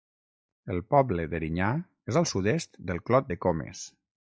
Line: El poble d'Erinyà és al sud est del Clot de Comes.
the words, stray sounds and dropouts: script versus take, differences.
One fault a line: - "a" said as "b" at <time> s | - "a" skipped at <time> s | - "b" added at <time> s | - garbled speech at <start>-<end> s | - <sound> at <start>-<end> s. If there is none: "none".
none